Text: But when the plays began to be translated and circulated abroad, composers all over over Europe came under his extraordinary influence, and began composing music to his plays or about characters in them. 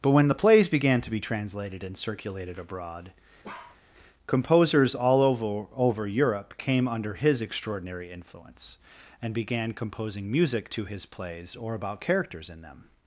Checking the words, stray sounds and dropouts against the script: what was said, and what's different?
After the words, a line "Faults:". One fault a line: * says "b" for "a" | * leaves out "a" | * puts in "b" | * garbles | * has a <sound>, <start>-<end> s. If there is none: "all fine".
But when the plays began to be translated and circulated abroad, composers all over over Europe came under his extraordinary influence, and began composing music to his plays or about characters in them.
Faults:
* has a bark, 3.4-3.8 s